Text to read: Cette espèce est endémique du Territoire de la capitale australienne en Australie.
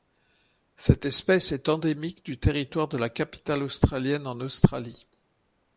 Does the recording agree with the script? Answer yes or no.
yes